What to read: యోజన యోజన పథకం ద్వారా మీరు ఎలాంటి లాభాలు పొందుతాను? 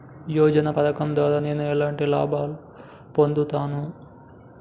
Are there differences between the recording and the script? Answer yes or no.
yes